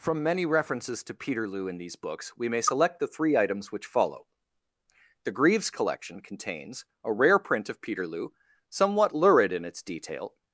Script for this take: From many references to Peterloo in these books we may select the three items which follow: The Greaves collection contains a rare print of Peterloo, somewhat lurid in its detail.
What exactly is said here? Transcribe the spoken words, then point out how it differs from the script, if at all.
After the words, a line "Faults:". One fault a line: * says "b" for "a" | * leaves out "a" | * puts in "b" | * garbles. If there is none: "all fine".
From many references to Peterloo in these books we may select the three items which follow: The Greaves collection contains a rare print of Peterloo, somewhat lurid in its detail.
Faults:
all fine